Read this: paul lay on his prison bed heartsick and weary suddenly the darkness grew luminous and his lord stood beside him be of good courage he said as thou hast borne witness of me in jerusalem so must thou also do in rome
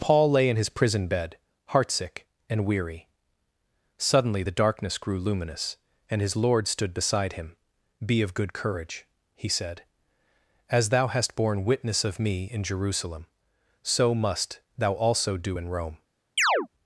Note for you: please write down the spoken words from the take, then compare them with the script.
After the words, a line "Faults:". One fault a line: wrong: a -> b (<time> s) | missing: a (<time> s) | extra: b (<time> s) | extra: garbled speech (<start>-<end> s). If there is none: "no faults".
paul lay in his prison bed heartsick and weary suddenly the darkness grew luminous and his lord stood beside him be of good courage he said as thou hast borne witness of me in jerusalem so must thou also do in rome
Faults:
wrong: on -> in (0.5 s)